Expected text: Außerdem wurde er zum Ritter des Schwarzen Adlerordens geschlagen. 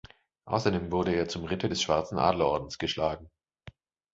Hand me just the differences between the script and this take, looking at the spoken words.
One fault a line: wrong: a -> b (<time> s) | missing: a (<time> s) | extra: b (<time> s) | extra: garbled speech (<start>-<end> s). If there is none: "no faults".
no faults